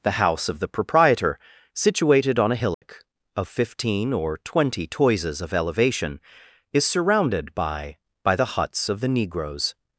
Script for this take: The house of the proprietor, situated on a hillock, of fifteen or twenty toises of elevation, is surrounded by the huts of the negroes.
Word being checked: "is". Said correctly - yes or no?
yes